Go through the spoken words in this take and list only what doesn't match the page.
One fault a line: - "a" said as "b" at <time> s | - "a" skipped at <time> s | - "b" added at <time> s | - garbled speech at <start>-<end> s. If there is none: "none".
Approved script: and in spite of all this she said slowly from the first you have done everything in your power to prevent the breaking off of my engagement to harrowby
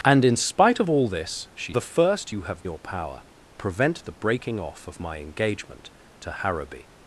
- "said slowly from" skipped at 1.7 s
- "done everything in" skipped at 2.7 s
- "to" skipped at 3.2 s